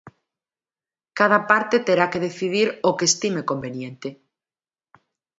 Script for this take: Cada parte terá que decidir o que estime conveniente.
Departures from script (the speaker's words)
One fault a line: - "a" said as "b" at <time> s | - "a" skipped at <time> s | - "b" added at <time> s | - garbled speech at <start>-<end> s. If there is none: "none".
none